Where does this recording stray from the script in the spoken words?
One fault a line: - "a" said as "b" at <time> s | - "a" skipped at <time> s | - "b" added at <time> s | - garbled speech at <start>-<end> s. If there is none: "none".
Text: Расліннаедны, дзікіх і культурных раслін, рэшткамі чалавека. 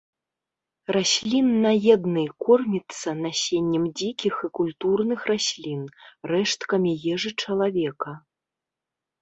- "корміцца насеннем" added at 2.5 s
- "ежы" added at 7.2 s